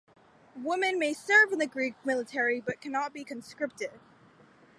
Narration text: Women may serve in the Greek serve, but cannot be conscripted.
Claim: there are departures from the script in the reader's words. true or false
true